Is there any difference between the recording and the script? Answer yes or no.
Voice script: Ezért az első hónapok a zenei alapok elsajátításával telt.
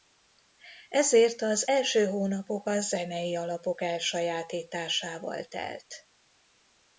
no